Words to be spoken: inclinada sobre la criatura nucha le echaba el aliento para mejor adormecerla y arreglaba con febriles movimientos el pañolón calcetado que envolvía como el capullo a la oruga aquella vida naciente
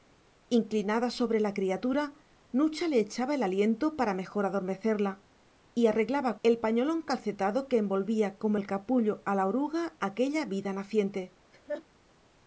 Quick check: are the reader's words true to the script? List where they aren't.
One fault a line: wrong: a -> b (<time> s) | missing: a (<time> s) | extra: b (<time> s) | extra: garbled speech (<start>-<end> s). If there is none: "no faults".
missing: con febriles movimientos (6.4 s)